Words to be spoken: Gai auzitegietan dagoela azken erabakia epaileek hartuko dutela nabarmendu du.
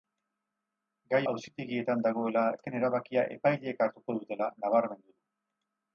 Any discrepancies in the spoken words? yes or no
no